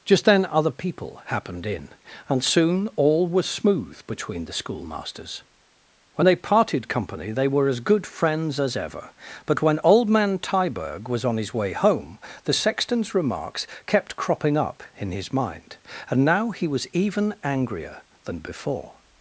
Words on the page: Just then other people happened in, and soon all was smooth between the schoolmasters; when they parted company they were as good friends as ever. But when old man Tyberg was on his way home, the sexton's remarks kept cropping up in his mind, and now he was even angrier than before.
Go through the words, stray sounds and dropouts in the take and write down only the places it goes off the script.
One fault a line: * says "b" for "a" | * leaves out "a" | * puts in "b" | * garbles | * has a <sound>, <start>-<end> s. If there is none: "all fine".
all fine